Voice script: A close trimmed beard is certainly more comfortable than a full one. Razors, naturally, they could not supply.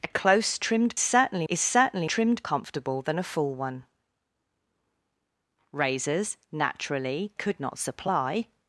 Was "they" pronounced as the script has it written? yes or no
no